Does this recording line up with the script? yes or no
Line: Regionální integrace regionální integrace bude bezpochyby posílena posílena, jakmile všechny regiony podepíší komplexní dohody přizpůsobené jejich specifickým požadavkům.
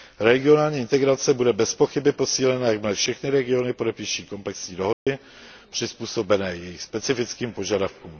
no